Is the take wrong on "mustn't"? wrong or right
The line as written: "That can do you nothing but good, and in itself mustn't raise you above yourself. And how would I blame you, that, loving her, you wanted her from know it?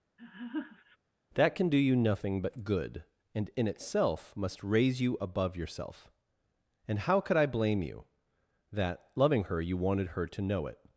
wrong